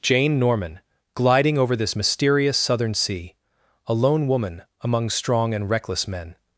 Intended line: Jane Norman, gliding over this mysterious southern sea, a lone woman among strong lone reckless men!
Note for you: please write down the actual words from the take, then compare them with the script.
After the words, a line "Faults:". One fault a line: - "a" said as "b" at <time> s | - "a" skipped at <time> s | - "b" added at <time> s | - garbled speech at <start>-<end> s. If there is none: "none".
Jane Norman, gliding over this mysterious southern sea, a lone woman among strong and reckless men!
Faults:
- "lone" said as "and" at 5.5 s